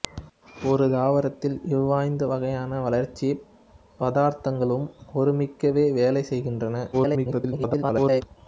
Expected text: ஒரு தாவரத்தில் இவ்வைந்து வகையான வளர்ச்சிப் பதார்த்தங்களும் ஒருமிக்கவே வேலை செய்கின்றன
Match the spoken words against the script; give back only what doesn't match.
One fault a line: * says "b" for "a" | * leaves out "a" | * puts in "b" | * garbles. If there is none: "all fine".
* garbles